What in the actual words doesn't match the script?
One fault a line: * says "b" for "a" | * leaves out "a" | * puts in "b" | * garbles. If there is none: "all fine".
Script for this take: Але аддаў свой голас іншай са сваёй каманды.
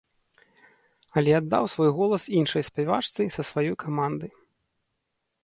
* puts in "спявачцы"